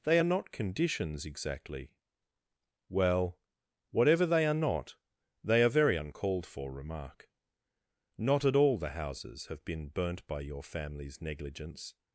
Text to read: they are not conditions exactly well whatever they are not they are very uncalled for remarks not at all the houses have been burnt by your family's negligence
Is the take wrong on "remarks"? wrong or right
wrong